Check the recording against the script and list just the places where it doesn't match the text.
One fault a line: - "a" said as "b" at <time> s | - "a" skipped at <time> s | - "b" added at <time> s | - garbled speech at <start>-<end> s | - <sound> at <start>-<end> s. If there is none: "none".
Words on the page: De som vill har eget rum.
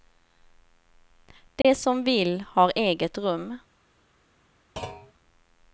- dropout at 1.6-1.6 s
- thud at 4.8-5.1 s